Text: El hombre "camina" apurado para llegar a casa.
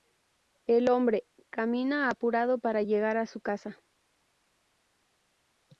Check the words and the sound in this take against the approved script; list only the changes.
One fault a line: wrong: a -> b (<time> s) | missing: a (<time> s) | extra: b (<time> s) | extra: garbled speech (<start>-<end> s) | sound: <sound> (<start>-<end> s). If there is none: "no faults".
extra: su (3.3 s)